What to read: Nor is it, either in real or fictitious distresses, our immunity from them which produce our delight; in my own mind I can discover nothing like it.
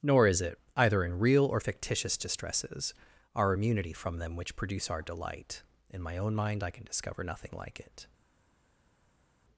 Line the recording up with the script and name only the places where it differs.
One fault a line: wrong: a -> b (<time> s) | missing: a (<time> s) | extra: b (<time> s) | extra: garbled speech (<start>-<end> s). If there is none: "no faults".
no faults